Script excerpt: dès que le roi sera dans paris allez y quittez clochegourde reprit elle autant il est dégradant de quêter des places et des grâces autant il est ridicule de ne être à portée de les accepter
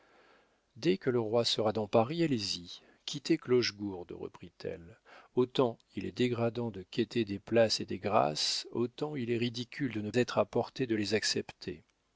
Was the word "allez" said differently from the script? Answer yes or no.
no